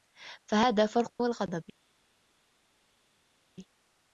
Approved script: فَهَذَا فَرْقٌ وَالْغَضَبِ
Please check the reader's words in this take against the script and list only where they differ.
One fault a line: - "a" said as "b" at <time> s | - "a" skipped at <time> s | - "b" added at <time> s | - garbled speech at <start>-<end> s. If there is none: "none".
none